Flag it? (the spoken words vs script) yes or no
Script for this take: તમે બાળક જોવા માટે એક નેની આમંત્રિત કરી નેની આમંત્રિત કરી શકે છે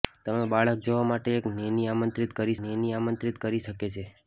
no